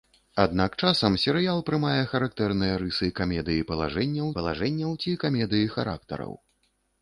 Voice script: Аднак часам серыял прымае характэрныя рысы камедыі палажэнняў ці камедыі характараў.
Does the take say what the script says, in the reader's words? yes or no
no